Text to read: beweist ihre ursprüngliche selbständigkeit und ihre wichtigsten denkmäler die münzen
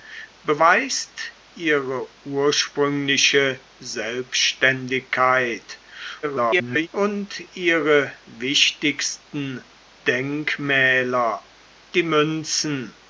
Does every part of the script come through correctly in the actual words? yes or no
no